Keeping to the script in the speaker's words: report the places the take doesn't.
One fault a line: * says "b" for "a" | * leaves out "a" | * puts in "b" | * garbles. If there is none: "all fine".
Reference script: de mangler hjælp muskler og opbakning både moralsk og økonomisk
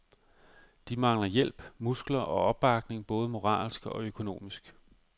all fine